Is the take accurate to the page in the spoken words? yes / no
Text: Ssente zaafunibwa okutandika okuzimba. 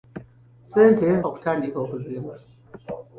no